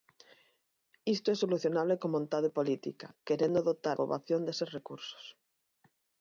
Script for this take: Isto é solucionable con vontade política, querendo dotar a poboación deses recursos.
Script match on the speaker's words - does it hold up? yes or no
no